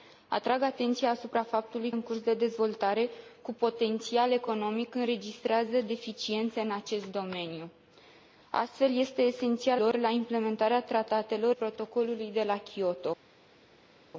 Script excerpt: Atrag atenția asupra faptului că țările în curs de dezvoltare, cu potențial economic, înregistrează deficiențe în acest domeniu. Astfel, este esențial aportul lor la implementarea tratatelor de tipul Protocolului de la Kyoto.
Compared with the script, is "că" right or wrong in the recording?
wrong